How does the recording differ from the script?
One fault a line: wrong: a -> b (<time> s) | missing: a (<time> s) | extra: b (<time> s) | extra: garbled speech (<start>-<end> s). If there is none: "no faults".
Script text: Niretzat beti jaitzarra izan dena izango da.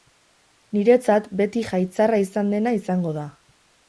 no faults